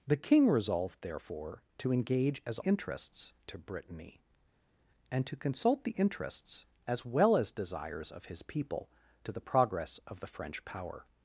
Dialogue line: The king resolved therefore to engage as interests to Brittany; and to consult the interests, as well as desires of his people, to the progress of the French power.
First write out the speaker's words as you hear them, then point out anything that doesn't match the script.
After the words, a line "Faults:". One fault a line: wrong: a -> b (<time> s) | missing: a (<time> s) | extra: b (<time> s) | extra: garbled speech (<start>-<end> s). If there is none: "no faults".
The king resolved therefore to engage as interests to Brittany; and to consult the interests, as well as desires of his people, to the progress of the French power.
Faults:
no faults